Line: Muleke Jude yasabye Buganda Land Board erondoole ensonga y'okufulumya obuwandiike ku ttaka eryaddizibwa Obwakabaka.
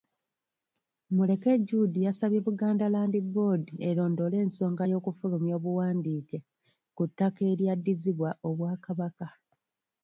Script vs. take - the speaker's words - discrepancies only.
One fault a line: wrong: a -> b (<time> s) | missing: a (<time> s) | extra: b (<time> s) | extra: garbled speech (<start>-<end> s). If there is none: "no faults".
no faults